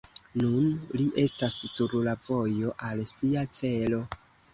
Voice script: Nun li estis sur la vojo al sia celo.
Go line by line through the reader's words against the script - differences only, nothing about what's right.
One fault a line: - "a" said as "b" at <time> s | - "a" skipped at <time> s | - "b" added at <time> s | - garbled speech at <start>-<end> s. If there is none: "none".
- "estis" said as "estas" at 1.2 s